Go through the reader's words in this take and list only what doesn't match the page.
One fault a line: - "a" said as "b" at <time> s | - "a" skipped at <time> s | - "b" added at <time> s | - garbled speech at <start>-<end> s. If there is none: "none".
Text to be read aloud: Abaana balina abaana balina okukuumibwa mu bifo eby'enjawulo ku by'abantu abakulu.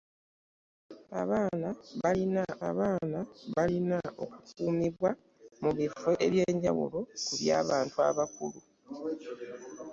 none